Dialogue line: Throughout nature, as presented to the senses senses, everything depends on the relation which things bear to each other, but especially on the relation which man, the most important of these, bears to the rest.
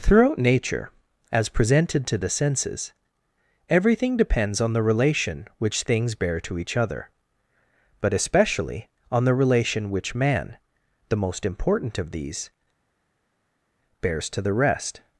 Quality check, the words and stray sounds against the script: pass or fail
fail